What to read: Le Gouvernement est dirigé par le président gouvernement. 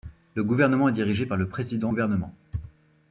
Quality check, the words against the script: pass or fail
pass